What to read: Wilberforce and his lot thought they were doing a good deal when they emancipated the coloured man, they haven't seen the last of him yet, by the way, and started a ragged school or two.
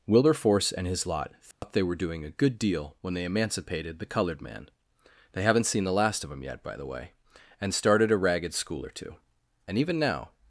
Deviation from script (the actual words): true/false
true